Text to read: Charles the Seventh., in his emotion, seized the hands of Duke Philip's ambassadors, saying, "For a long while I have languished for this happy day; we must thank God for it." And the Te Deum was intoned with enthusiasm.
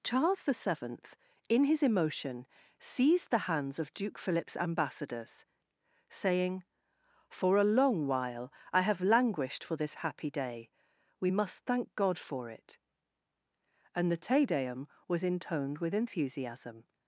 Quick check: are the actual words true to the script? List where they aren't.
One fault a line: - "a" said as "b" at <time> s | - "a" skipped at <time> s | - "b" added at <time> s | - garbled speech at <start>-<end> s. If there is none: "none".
none